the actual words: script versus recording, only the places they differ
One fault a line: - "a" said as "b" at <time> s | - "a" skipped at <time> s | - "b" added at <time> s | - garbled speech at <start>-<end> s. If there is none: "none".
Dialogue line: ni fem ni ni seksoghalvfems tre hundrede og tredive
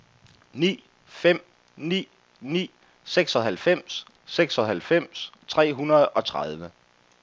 - "seksoghalvfems" added at 4.2 s